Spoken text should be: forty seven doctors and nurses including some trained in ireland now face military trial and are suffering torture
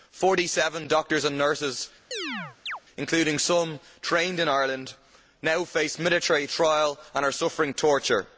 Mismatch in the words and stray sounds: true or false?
true